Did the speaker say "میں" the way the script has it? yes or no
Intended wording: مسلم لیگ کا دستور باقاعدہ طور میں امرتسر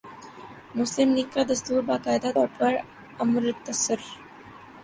no